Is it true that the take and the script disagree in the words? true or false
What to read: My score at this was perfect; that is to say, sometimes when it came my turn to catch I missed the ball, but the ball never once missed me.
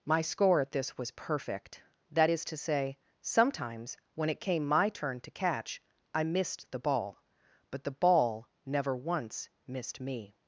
false